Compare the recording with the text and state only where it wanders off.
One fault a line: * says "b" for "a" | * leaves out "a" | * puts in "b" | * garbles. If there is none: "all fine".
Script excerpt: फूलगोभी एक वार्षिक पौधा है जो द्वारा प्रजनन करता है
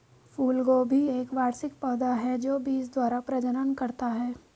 * puts in "बीज"